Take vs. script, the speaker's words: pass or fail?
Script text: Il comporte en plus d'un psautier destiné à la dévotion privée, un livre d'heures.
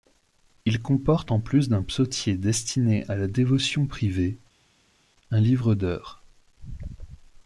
pass